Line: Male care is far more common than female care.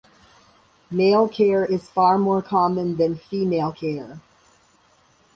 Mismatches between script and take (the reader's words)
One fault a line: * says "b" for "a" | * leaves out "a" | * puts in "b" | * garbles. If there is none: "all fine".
all fine